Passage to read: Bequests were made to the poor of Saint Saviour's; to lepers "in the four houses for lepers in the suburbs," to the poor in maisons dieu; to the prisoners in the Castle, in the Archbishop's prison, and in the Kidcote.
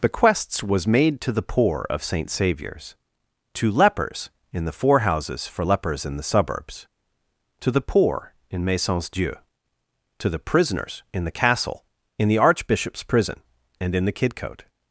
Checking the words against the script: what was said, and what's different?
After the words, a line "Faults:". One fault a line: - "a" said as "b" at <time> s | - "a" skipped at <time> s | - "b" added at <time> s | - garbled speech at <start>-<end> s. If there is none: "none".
Bequests was made to the poor of Saint Saviour's; to lepers "in the four houses for lepers in the suburbs," to the poor in maisons dieu; to the prisoners in the Castle, in the Archbishop's prison, and in the Kidcote.
Faults:
- "were" said as "was" at 0.6 s